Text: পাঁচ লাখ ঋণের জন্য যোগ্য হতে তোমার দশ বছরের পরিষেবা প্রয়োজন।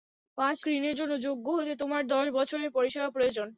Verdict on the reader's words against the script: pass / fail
fail